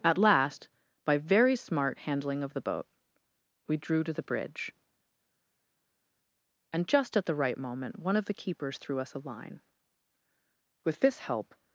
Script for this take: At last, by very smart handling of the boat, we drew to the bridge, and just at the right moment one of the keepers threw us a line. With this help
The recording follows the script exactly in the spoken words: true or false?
true